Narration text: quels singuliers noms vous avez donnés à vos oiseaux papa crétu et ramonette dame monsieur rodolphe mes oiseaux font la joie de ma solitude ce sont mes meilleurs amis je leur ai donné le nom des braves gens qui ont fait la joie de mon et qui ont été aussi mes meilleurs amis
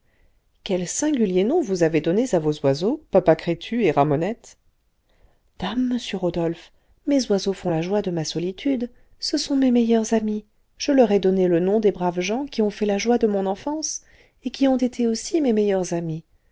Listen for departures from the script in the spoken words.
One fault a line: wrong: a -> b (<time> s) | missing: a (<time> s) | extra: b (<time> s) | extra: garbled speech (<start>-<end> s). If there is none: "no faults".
extra: enfance (13.5 s)